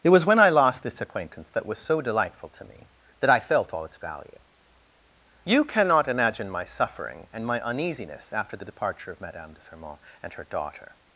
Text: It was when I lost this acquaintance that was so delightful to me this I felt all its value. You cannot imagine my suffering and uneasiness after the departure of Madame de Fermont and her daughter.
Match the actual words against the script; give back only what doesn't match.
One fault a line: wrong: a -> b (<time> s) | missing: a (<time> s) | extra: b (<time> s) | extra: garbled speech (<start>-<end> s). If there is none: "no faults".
wrong: this -> that (3.2 s)
extra: my (7.4 s)